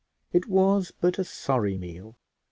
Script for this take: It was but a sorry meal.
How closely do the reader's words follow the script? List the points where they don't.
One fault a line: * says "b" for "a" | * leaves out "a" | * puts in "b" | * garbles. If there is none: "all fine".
all fine